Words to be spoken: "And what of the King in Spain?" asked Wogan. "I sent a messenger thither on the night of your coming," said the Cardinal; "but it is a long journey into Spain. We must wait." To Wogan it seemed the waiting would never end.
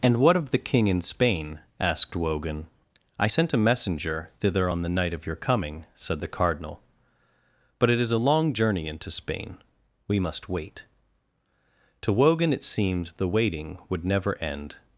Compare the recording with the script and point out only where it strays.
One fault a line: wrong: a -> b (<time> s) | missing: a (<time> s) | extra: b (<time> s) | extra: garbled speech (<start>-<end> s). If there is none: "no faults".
no faults